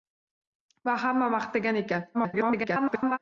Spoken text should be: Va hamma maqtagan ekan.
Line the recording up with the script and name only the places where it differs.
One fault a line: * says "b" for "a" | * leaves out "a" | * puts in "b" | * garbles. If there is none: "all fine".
* garbles